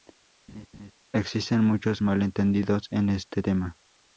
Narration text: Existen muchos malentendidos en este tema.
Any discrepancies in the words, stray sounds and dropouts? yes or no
yes